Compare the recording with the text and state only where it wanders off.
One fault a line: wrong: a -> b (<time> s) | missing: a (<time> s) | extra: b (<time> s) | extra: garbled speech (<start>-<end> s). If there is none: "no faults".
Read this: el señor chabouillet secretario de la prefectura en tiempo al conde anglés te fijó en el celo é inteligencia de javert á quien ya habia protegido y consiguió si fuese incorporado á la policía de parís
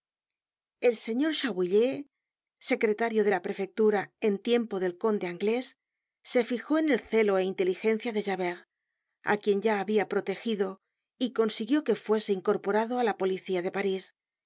wrong: al -> del (4.8 s)
wrong: te -> se (6.2 s)
wrong: si -> que (11.9 s)